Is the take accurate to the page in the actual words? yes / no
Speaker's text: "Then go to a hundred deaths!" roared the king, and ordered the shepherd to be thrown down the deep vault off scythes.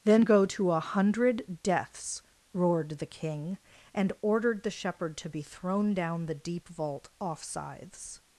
yes